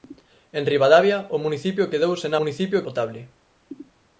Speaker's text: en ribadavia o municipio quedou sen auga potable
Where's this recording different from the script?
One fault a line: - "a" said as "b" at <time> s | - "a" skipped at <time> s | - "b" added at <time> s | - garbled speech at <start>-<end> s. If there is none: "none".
- "auga" said as "municipio" at 2.4 s